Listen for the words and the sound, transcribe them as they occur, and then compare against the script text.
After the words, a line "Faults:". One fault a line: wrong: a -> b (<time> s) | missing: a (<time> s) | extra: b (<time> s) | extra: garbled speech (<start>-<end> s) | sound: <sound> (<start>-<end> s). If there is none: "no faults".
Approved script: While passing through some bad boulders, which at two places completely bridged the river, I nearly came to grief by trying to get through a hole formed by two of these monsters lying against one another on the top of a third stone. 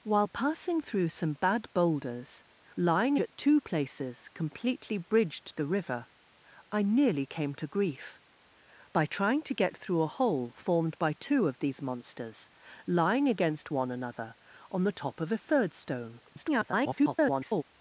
While passing through some bad boulders, lying at two places completely bridged the river, I nearly came to grief by trying to get through a hole formed by two of these monsters lying against one another on the top of a third stone. [garbled]
Faults:
wrong: which -> lying (2.8 s)
extra: garbled speech (16.3-17.6 s)